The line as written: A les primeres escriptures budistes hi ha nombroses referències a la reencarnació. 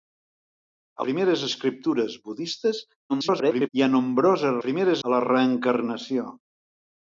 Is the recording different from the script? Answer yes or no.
yes